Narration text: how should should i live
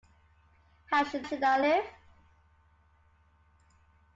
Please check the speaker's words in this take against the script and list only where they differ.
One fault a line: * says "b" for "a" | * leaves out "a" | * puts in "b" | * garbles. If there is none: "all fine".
all fine